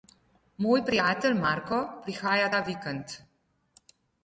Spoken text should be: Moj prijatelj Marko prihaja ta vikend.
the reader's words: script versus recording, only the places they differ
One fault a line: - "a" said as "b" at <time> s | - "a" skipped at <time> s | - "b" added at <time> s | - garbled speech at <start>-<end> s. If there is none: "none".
none